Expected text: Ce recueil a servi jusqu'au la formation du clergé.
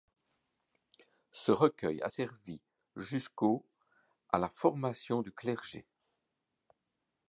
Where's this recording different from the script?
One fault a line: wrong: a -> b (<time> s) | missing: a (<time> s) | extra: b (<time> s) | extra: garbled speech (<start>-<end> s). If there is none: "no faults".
extra: à (4.3 s)